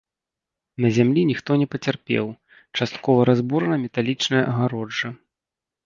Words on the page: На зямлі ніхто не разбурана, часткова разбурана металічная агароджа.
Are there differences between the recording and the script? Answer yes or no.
yes